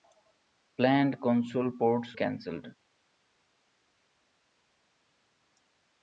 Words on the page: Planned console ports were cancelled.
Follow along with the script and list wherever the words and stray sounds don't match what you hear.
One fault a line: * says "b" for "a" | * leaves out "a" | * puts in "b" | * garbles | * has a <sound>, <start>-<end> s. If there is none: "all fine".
* leaves out "were"